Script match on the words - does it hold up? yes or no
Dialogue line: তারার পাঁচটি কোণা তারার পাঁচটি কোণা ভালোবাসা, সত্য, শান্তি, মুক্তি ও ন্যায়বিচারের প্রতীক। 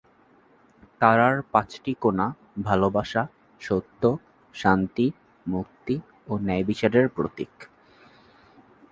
no